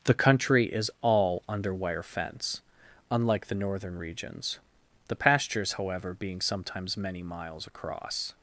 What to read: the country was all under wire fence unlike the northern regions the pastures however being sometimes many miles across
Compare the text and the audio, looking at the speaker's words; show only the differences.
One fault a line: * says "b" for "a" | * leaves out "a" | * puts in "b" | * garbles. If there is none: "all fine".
* says "is" for "was"